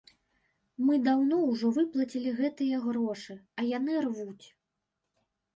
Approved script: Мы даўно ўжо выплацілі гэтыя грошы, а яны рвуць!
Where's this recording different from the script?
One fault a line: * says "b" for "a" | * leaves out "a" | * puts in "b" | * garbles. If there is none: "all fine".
all fine